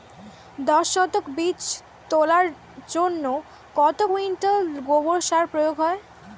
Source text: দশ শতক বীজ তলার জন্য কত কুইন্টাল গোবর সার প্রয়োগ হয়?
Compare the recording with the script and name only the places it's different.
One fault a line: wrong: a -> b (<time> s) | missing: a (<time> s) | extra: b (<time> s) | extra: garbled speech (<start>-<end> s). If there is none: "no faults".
no faults